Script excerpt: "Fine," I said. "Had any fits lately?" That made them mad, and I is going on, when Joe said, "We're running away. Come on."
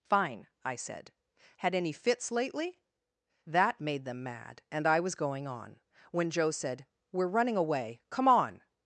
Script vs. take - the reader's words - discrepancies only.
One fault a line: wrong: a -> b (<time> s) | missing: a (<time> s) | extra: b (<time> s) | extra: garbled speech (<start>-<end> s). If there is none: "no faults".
wrong: is -> was (5.0 s)